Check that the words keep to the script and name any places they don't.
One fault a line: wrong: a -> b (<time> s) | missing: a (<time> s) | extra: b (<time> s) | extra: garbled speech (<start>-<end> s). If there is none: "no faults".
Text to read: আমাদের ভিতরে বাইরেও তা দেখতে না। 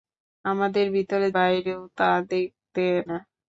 no faults